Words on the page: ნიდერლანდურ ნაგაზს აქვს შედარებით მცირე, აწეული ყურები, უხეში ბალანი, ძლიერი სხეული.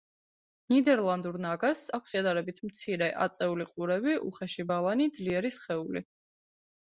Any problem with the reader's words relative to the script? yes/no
no